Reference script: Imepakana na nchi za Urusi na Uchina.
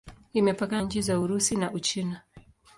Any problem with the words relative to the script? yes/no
yes